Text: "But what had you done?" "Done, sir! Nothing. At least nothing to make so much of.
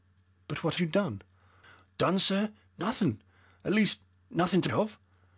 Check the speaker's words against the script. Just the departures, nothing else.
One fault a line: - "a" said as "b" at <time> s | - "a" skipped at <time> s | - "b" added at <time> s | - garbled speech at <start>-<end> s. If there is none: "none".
- "had" skipped at 0.8 s
- "make so much" skipped at 4.7 s